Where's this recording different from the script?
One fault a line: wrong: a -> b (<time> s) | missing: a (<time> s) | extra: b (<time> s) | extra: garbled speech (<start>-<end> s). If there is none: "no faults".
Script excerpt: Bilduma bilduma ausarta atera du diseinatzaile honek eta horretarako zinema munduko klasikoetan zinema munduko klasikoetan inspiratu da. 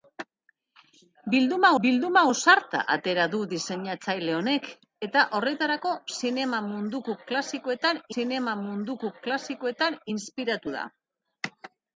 no faults